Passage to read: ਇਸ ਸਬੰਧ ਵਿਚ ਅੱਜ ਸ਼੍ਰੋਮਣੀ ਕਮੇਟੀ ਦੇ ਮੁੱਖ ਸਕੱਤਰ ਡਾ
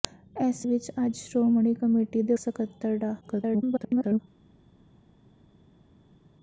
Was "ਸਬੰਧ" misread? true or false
true